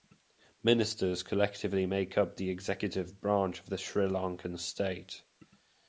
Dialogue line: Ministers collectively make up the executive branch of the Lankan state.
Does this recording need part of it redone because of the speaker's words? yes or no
yes